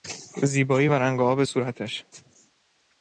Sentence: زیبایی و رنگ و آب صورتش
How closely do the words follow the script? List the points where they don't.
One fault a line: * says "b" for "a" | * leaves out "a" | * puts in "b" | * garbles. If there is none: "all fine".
all fine